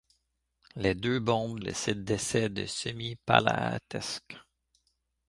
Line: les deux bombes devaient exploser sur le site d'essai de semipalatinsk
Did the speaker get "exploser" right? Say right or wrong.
wrong